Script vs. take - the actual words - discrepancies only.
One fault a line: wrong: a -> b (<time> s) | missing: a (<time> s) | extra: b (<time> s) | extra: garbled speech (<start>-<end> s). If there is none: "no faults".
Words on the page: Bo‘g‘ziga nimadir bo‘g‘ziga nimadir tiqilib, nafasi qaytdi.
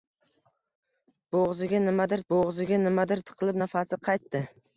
no faults